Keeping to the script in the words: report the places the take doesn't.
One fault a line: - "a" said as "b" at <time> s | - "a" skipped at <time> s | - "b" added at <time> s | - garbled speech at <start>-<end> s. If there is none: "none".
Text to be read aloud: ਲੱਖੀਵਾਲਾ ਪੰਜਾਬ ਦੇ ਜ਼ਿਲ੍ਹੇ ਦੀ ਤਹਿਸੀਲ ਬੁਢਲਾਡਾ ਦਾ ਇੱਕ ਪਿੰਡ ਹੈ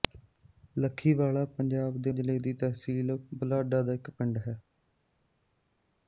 none